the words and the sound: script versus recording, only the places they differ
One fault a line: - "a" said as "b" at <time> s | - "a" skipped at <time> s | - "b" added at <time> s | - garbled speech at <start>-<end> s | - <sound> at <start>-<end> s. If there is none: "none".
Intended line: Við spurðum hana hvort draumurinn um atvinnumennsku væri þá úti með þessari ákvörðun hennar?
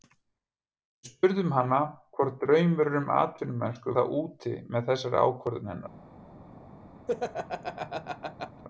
- "væri" skipped at 4.0 s
- laugh at 7.1-8.6 s